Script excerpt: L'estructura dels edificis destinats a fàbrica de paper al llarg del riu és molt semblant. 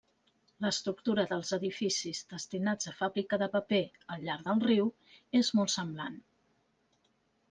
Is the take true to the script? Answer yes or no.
yes